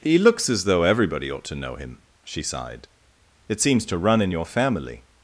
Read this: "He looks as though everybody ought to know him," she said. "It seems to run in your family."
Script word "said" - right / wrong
wrong